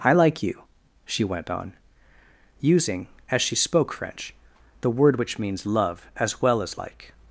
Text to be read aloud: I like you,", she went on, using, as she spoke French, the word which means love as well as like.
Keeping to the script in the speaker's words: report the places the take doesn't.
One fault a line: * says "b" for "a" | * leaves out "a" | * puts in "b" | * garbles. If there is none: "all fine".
all fine